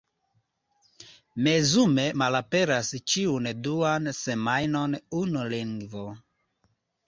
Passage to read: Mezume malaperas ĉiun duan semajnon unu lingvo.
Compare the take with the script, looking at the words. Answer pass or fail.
pass